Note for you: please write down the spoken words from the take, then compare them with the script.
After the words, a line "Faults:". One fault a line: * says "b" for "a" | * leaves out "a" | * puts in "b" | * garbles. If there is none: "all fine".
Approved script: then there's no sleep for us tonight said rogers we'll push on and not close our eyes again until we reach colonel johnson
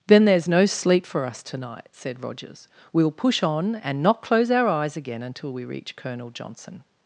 then there's no sleep for us tonight said rogers we'll push on and not close our eyes again until we reach colonel johnson
Faults:
all fine